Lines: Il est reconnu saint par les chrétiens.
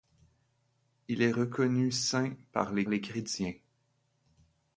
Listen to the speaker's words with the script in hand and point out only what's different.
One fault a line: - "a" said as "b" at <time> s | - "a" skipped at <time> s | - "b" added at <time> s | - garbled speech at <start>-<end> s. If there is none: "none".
- "les" added at 2.9 s